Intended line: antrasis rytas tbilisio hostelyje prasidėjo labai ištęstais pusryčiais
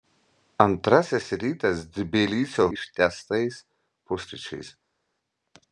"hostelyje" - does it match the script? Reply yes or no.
no